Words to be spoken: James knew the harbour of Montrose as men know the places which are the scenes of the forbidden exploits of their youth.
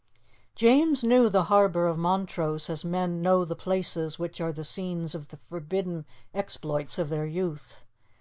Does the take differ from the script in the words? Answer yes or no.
no